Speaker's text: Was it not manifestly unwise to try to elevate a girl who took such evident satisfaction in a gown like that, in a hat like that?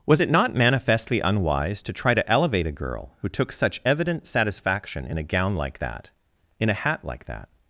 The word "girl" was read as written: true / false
true